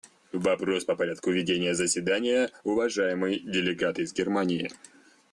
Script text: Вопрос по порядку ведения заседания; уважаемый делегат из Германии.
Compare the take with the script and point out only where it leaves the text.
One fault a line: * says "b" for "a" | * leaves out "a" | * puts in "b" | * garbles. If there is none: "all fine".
all fine